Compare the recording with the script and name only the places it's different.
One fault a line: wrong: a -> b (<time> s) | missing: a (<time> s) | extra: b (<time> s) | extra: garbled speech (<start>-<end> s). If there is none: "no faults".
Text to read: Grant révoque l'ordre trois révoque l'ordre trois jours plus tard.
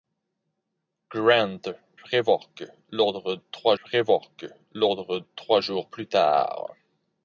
no faults